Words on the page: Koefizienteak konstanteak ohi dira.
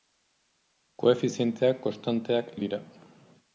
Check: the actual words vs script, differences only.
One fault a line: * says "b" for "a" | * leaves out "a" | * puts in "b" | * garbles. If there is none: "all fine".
all fine